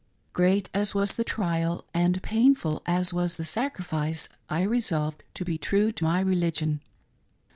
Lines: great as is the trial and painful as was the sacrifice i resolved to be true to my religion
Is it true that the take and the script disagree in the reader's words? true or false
true